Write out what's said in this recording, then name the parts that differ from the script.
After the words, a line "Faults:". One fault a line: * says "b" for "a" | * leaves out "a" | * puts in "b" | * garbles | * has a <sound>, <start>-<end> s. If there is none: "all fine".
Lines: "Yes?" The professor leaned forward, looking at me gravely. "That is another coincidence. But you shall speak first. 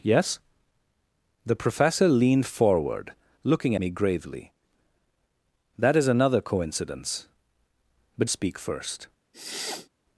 "Yes?" The professor leaned forward, looking me gravely. "That is another coincidence. But speak first.
Faults:
* leaves out "at"
* leaves out "you shall"
* has a sniff, 9.3-9.9 s